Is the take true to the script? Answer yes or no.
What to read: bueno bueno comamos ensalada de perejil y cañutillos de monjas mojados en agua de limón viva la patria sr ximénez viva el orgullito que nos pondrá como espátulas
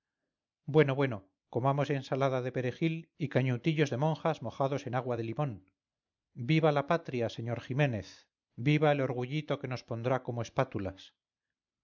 yes